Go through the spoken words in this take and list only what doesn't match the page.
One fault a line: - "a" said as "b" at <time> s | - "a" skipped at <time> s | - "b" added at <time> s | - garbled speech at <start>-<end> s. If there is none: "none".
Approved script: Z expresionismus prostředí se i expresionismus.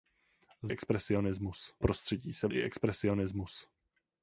none